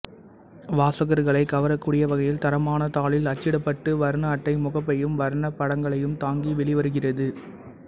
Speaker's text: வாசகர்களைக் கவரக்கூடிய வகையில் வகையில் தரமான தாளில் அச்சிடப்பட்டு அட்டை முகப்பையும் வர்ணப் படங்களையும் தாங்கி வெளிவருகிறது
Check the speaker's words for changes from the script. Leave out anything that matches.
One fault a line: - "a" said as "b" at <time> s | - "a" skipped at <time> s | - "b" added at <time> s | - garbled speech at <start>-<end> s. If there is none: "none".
- "வகையில்" skipped at 2.4 s
- "வர்ண" added at 4.0 s